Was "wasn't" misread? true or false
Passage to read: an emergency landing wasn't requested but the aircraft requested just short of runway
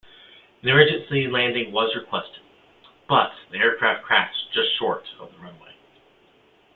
true